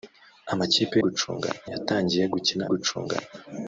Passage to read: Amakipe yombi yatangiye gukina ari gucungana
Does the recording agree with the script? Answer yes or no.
no